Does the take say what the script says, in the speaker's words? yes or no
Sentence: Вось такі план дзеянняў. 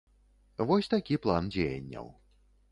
yes